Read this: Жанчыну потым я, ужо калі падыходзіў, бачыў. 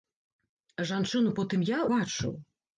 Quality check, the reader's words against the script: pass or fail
fail